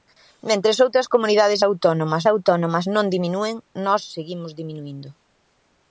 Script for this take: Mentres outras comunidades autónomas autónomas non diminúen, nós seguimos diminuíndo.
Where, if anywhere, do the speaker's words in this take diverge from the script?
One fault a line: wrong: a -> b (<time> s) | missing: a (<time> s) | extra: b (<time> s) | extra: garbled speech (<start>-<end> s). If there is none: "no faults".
no faults